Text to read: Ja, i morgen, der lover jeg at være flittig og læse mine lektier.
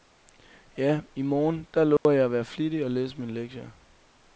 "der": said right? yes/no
yes